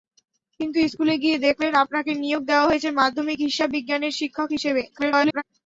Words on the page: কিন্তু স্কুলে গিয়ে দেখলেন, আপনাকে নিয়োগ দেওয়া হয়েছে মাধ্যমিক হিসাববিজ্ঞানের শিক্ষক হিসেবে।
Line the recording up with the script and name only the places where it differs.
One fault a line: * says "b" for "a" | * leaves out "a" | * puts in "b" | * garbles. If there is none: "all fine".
* garbles